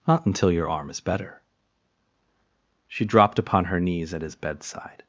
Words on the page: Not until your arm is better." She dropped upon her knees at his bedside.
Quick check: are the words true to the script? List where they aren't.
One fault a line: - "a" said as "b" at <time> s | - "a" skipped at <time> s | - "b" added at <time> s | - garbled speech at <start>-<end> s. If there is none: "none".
none